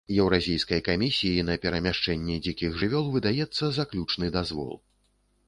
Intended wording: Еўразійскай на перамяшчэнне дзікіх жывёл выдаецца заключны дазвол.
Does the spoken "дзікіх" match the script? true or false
true